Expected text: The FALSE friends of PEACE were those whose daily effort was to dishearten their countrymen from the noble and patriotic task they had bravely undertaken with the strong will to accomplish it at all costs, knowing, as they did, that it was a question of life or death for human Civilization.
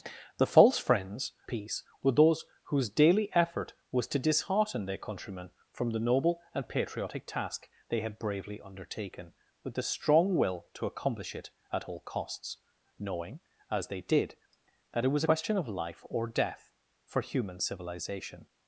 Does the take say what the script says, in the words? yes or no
no